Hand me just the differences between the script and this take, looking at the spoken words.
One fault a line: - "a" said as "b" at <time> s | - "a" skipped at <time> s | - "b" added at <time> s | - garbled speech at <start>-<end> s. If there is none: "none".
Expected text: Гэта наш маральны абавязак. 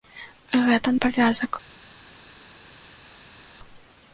- "наш маральны" skipped at 0.9 s